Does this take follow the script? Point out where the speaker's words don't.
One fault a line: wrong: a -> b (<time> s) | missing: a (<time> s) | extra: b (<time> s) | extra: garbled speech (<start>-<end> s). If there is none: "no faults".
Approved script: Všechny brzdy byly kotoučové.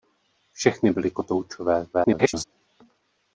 missing: brzdy (0.9 s)
extra: garbled speech (1.9-2.4 s)